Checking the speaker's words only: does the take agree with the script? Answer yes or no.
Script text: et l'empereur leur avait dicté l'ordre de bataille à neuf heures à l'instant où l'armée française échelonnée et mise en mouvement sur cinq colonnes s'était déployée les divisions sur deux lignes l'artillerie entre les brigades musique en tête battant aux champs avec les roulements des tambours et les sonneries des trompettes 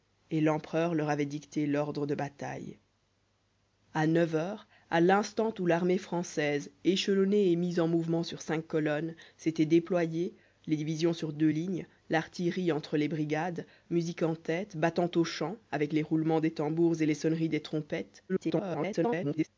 no